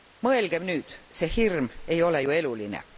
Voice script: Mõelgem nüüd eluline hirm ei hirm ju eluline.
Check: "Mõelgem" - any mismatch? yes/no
no